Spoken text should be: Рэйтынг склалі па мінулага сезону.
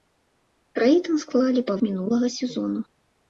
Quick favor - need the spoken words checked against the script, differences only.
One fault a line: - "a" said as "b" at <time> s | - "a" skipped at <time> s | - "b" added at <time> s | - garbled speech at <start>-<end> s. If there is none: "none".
none